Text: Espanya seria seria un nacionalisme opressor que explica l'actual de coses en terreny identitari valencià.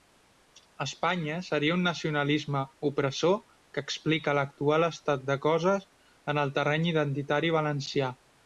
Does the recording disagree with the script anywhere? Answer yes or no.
yes